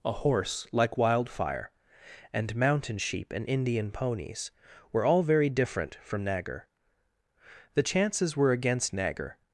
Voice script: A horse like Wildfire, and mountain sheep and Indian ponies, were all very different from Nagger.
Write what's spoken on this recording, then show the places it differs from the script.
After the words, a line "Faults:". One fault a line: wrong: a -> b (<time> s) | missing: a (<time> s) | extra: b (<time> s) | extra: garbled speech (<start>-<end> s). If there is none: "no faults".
A horse like Wildfire, and mountain sheep and Indian ponies, were all very different from Nagger. The chances were against Nagger
Faults:
extra: The chances were against Nagger (7.7 s)